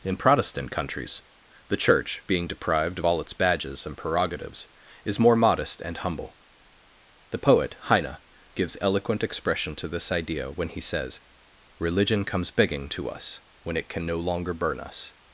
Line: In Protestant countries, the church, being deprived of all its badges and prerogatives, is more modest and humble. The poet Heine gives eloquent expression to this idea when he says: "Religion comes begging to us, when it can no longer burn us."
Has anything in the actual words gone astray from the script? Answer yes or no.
no